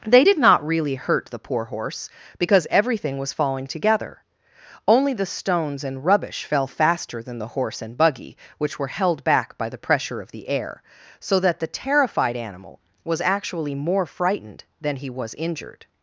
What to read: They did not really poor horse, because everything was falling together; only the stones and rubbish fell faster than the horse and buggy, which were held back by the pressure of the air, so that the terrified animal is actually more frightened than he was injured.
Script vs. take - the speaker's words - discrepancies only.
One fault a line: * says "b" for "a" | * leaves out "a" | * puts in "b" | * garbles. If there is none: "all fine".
* puts in "hurt the"
* says "was" for "is"